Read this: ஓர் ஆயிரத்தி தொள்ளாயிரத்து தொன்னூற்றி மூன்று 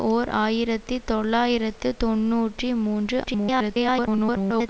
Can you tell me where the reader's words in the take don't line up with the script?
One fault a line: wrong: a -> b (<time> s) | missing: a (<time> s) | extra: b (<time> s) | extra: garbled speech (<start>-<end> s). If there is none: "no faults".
extra: garbled speech (3.2-4.7 s)